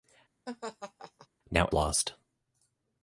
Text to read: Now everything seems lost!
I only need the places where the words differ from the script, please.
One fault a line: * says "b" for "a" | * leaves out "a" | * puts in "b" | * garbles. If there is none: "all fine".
* leaves out "everything seems"